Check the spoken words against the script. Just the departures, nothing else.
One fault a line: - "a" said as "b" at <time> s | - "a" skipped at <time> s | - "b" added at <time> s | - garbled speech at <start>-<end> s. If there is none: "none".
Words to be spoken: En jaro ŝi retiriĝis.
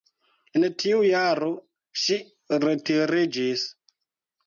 - "tiu" added at 0.8 s